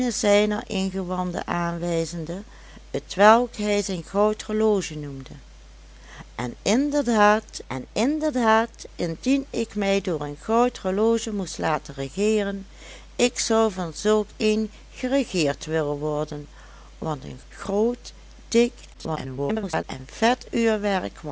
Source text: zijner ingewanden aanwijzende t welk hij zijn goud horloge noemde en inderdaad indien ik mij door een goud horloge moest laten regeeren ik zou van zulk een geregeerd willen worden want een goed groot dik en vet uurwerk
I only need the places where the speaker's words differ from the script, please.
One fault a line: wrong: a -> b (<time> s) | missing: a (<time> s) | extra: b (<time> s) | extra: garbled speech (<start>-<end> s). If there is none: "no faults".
extra: en inderdaad (7.7 s)
missing: goed (17.4 s)
extra: garbled speech (18.9-19.8 s)